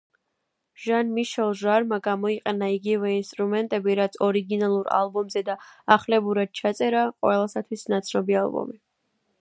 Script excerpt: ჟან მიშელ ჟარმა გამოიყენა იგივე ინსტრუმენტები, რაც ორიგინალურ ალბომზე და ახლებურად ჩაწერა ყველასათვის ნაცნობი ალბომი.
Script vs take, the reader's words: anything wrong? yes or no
no